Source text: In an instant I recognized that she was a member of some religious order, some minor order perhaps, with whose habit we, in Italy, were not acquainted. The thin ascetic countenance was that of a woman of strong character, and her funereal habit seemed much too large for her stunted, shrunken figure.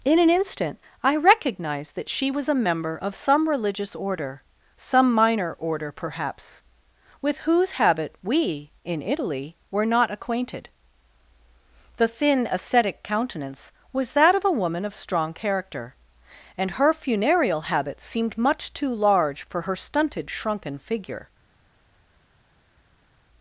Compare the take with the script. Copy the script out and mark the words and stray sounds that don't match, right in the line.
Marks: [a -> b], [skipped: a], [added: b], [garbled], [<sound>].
In an instant I recognized that she was a member of some religious order, some minor order perhaps, with whose habit we, in Italy, were not acquainted. The thin ascetic countenance was that of a woman of strong character, and her funereal habit seemed much too large for her stunted, shrunken figure.